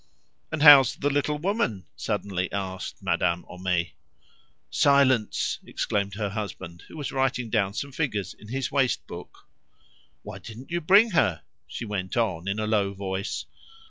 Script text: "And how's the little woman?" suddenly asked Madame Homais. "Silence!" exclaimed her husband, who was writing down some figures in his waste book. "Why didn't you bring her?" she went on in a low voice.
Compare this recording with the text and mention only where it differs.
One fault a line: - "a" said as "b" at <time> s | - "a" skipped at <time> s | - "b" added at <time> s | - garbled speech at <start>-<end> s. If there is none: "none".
none